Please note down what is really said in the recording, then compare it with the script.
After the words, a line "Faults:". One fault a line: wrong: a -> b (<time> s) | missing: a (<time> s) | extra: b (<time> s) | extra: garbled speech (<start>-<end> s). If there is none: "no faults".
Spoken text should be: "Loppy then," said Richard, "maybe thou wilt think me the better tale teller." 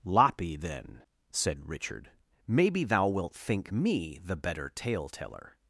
"Loppy then," said Richard, "maybe thou wilt think me the better tale teller."
Faults:
no faults